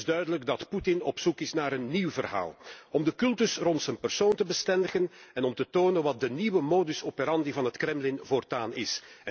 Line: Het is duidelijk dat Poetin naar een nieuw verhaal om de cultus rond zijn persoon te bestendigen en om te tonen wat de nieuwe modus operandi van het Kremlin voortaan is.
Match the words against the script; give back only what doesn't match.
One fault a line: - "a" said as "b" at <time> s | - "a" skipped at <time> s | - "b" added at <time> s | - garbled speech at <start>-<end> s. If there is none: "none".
- "op zoek is" added at 1.0 s